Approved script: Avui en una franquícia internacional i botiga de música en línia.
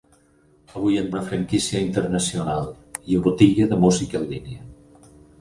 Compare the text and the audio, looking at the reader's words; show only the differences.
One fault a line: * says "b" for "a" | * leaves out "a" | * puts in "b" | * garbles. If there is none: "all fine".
all fine